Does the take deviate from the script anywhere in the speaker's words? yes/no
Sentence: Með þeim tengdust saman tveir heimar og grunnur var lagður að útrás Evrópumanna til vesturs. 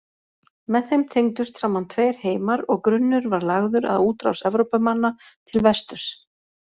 no